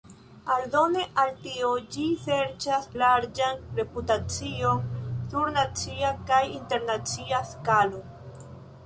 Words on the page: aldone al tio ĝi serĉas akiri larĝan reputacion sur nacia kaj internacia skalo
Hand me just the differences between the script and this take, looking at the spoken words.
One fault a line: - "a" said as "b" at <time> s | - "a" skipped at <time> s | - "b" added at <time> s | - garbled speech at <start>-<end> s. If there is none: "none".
- "akiri" skipped at 2.9 s